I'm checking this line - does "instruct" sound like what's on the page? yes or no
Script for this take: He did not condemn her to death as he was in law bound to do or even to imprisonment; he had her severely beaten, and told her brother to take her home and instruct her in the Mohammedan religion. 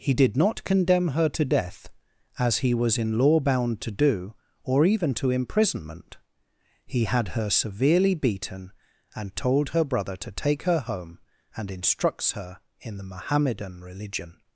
no